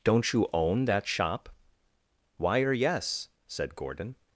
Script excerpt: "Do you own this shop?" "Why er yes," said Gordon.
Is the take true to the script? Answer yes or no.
no